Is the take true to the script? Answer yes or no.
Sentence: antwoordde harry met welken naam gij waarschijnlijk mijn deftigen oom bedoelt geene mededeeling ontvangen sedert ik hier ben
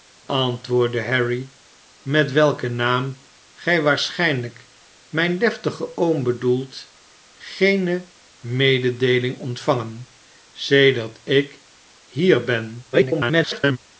no